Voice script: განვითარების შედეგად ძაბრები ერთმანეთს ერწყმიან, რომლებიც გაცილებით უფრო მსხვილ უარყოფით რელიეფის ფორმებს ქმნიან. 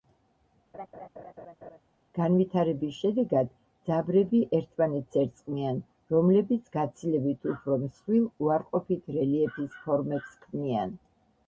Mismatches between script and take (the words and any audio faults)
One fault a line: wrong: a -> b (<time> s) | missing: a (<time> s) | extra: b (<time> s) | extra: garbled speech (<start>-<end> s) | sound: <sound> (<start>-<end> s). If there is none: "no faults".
sound: laugh (0.7-1.8 s)